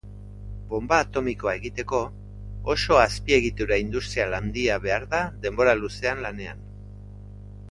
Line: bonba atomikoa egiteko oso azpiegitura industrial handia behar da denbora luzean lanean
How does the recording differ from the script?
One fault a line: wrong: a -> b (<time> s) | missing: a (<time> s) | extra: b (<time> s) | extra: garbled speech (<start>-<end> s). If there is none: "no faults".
no faults